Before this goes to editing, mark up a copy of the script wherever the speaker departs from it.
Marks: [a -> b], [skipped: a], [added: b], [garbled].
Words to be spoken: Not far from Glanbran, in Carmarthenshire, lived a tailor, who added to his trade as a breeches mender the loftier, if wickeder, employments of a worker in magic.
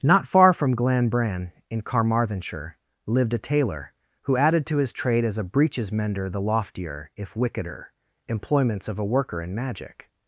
Not far from Glanbran, in Carmarthenshire, lived a tailor, who added to his trade as a breeches mender the loftier, if wickeder, employments of a worker in magic.